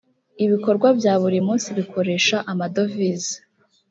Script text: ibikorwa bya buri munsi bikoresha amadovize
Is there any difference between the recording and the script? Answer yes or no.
no